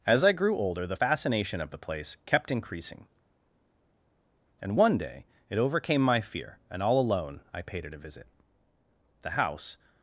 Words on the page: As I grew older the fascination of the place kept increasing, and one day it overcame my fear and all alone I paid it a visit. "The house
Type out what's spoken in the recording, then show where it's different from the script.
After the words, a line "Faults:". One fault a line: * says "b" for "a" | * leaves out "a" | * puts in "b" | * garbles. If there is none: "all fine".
As I grew older the fascination of the place kept increasing, and one day it overcame my fear and all alone I paid it a visit. "The house
Faults:
all fine